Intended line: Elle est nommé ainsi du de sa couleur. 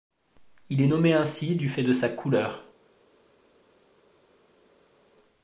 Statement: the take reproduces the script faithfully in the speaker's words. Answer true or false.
false